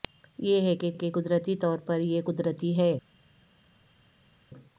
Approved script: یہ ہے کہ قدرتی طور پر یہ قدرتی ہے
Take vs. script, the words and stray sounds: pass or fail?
fail